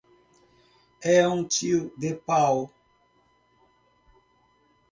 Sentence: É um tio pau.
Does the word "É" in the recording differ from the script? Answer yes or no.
no